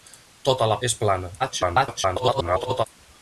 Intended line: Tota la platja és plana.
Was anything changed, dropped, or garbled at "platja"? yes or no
yes